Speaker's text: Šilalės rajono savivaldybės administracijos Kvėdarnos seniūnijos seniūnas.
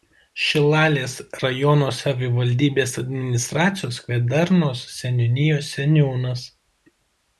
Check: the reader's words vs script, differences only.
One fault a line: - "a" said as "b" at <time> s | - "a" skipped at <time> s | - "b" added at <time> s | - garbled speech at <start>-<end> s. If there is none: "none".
none